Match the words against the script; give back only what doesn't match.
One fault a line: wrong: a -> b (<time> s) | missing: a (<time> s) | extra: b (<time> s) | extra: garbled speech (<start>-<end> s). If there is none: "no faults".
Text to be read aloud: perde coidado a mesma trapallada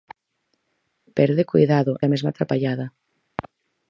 no faults